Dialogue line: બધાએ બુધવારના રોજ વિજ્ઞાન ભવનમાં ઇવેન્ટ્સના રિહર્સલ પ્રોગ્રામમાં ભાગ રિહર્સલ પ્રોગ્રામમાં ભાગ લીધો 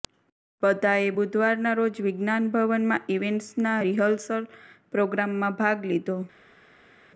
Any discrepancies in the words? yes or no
yes